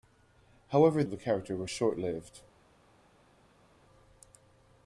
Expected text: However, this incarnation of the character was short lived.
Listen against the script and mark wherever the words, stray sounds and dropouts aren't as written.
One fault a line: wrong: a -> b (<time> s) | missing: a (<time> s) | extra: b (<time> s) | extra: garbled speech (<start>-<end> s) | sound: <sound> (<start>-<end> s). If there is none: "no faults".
missing: this incarnation (1.0 s)